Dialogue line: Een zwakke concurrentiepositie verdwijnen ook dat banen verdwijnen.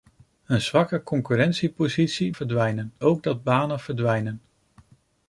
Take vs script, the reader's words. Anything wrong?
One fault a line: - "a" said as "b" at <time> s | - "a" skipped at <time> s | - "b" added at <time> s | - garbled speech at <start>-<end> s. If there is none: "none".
none